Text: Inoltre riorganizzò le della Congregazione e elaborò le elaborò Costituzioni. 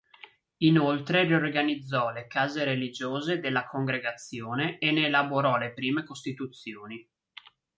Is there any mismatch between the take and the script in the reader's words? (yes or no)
yes